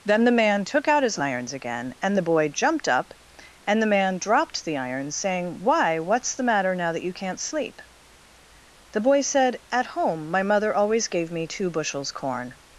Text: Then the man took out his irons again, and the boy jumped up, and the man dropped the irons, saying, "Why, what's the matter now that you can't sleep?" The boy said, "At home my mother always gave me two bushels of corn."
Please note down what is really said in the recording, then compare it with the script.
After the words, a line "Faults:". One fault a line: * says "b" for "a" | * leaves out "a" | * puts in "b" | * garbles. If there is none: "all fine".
Then the man took out his irons again, and the boy jumped up, and the man dropped the irons, saying, "Why, what's the matter now that you can't sleep?" The boy said, "At home my mother always gave me two bushels corn."
Faults:
* leaves out "of"